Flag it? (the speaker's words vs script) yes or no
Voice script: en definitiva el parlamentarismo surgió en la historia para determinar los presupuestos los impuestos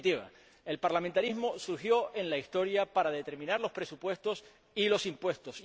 yes